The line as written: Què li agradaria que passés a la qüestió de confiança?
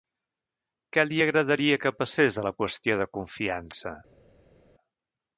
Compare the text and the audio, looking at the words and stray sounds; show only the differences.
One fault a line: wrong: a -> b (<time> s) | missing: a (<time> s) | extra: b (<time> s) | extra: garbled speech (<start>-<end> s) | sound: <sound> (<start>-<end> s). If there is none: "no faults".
no faults